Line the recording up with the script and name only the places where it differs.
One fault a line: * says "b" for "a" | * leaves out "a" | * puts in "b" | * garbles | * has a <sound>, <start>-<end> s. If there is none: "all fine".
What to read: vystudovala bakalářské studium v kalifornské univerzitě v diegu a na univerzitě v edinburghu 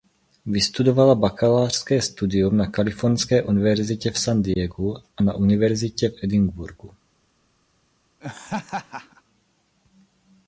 * says "na" for "v"
* puts in "san"
* has a laugh, 8.2-9.2 s